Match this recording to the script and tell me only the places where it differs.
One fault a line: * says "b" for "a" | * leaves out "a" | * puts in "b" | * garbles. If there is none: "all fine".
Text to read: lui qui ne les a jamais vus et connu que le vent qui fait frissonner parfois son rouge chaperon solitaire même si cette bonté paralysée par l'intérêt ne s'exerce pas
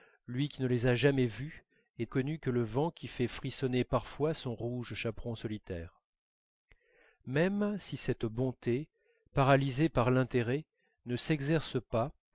all fine